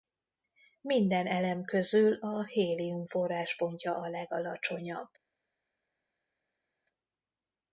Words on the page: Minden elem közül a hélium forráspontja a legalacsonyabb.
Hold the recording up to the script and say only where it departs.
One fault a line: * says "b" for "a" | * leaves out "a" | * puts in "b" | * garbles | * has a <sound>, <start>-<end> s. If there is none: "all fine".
all fine